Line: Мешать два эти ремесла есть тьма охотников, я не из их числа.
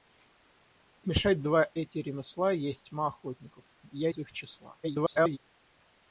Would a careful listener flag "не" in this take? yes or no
yes